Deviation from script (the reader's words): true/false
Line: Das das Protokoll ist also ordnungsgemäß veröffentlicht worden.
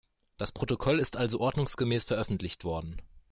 true